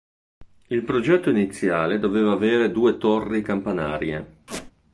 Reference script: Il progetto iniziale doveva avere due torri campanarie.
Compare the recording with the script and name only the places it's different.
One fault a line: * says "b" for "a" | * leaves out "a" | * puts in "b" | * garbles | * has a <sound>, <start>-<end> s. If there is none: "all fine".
* has a squeak, 4.5-4.7 s